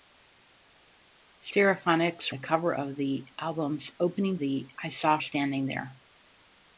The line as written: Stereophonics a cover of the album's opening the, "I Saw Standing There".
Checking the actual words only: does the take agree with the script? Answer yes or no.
yes